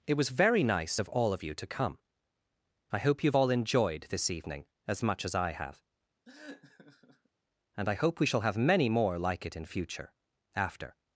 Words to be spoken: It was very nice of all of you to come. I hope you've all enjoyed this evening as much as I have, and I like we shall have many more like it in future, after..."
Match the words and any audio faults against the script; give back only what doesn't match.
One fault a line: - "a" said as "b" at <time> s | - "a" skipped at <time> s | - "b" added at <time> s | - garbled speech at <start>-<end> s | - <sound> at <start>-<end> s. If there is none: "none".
- laugh at 6.2-7.3 s
- "like" said as "hope" at 7.9 s